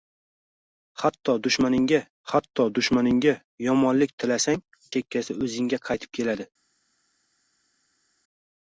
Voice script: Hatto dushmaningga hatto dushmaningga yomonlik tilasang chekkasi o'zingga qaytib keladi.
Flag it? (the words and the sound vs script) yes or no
no